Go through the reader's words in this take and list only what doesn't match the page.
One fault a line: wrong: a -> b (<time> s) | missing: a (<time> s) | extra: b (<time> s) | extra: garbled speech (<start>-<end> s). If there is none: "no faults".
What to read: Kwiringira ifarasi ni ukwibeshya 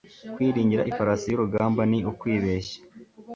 extra: y'urugamba (1.3 s)